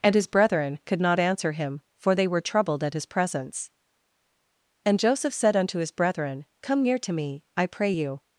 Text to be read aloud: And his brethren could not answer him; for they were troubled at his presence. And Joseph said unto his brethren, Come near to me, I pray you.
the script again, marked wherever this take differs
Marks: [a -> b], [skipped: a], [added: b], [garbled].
And his brethren could not answer him; for they were troubled at his presence. And Joseph said unto his brethren, Come near to me, I pray you.